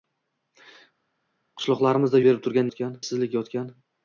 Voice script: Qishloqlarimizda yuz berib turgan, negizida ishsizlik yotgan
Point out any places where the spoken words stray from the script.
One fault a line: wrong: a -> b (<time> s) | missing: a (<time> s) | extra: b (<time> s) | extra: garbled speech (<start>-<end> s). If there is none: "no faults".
missing: yuz (2.2 s)
wrong: negizida -> yotgan (2.7 s)